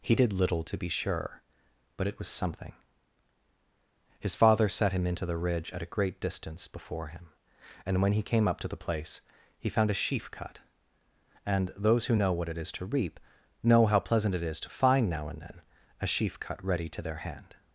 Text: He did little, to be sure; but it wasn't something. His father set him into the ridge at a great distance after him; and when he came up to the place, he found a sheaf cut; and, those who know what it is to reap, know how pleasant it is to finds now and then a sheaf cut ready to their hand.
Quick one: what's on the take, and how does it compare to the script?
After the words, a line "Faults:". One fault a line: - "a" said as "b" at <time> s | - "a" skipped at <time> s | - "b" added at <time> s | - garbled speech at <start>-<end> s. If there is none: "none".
He did little, to be sure; but it was something. His father set him into the ridge at a great distance before him; and when he came up to the place, he found a sheaf cut; and, those who know what it is to reap, know how pleasant it is to find now and then a sheaf cut ready to their hand.
Faults:
- "wasn't" said as "was" at 2.2 s
- "after" said as "before" at 6.7 s
- "finds" said as "find" at 14.7 s